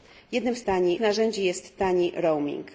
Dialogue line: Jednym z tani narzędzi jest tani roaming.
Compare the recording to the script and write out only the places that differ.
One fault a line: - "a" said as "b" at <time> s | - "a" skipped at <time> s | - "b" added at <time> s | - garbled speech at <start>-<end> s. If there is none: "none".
none